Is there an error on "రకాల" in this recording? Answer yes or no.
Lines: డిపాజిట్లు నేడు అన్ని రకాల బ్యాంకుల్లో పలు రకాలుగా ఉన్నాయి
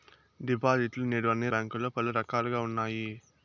yes